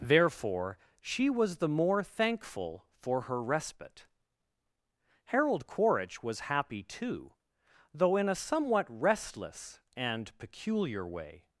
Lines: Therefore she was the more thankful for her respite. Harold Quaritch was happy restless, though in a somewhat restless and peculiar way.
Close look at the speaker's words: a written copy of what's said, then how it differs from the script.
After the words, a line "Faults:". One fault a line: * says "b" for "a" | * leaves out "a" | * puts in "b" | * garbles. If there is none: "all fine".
Therefore she was the more thankful for her respite. Harold Quaritch was happy too, though in a somewhat restless and peculiar way.
Faults:
* says "too" for "restless"